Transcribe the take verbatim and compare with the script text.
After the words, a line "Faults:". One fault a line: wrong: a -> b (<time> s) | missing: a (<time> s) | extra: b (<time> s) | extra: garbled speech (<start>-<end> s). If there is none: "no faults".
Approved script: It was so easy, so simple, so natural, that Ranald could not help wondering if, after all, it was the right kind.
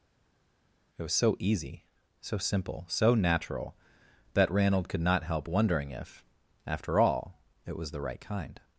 It was so easy, so simple, so natural, that Ranald could not help wondering if, after all, it was the right kind.
Faults:
no faults